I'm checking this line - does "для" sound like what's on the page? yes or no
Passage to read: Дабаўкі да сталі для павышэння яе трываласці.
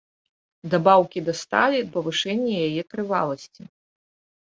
no